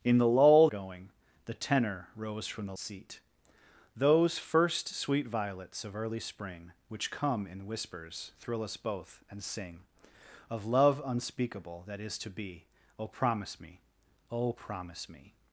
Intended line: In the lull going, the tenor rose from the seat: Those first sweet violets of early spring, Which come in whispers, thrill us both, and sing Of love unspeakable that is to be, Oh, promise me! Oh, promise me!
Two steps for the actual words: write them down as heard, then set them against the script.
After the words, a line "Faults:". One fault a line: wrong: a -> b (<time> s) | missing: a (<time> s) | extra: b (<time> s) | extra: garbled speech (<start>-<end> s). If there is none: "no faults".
In the lull going, the tenor rose from the seat: Those first sweet violets of early spring, Which come in whispers, thrill us both, and sing Of love unspeakable that is to be, Oh, promise me! Oh, promise me!
Faults:
no faults